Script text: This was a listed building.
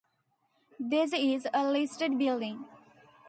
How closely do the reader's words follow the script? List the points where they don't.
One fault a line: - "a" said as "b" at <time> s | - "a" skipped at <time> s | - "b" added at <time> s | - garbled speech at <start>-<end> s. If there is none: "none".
- "was" said as "is" at 1.1 s